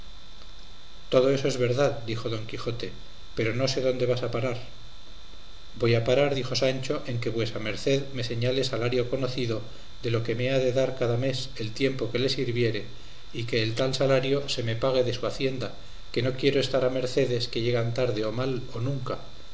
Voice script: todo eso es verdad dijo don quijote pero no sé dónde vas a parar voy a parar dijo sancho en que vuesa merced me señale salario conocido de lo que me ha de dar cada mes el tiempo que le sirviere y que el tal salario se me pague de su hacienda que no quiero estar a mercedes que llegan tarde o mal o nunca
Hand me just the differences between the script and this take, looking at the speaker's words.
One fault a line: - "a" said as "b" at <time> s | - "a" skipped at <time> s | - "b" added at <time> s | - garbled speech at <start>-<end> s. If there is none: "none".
none